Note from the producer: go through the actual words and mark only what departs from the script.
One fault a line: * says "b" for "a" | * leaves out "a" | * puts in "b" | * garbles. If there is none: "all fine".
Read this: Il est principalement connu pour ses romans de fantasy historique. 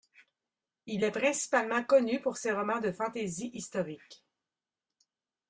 all fine